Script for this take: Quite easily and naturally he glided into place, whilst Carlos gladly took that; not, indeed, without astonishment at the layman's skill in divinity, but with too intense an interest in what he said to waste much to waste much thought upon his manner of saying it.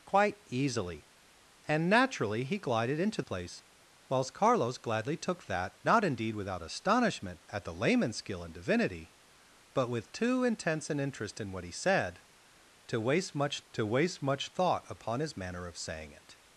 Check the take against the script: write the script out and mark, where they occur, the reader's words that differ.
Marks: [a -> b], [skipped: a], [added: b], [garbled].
Quite easily and naturally he glided into place, whilst Carlos gladly took that; not, indeed, without astonishment at the layman's skill in divinity, but with too intense an interest in what he said to waste much to waste much thought upon his manner of saying it.